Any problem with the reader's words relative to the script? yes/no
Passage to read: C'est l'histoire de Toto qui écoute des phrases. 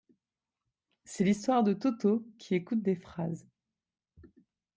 no